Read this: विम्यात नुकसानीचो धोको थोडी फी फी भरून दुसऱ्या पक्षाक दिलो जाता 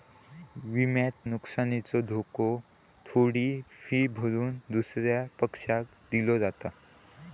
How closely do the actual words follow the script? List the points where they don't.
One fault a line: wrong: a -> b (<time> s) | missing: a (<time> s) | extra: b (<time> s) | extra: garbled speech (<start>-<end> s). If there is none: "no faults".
missing: फी (4.1 s)